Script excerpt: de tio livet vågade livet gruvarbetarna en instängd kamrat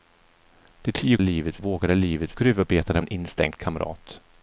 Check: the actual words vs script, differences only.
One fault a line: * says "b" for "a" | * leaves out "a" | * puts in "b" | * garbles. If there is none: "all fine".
all fine